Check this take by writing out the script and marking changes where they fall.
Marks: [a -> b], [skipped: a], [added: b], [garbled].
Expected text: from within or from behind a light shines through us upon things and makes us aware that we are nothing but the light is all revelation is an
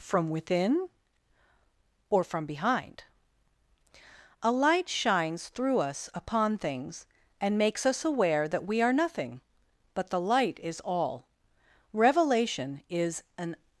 from within or from behind a light shines through us upon things and makes us aware that we are nothing but the light is all revelation is an